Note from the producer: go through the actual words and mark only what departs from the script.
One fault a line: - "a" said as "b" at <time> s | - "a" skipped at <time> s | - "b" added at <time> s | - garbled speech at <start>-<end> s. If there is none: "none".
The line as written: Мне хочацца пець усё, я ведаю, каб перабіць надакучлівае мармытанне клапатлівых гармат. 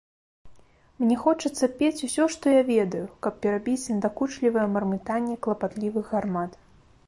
- "што" added at 2.4 s